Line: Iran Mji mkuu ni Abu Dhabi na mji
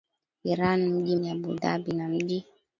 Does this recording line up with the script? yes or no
no